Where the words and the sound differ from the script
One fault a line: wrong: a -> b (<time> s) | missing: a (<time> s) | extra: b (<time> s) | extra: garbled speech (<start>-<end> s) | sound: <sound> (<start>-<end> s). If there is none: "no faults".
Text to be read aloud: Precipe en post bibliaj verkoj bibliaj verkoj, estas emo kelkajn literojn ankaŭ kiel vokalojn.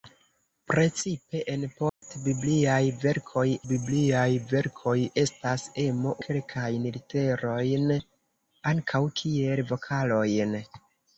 sound: dropout (1.9-2.0 s)